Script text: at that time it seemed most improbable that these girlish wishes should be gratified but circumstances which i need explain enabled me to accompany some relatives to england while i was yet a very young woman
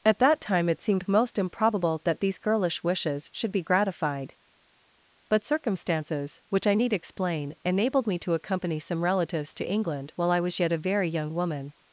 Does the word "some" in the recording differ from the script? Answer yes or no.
no